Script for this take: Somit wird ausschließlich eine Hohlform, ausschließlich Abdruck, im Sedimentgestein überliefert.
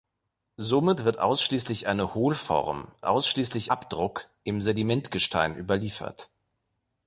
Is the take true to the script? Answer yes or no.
yes